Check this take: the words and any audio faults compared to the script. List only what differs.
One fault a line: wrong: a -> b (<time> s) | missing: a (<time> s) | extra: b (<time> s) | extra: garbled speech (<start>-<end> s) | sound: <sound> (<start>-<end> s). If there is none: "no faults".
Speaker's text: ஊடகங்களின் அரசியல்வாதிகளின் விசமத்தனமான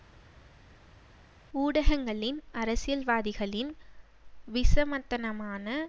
no faults